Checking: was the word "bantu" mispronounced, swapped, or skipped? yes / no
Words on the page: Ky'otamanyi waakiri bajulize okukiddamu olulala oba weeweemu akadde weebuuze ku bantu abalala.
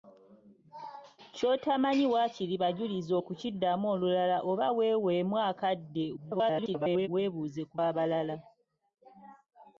yes